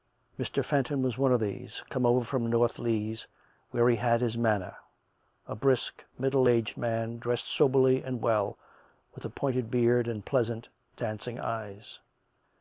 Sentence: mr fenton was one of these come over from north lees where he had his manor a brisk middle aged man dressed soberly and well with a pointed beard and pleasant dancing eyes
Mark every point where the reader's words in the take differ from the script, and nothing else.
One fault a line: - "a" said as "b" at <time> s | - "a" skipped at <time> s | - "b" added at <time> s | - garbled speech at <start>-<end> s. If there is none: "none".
none